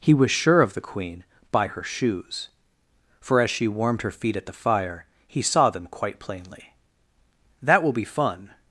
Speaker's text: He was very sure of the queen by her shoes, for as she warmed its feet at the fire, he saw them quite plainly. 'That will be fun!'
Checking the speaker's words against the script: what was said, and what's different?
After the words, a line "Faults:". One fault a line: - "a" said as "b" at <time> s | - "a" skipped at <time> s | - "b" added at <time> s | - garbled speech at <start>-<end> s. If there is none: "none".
He was sure of the queen by her shoes, for as she warmed her feet at the fire, he saw them quite plainly. 'That will be fun!'
Faults:
- "very" skipped at 0.3 s
- "its" said as "her" at 4.0 s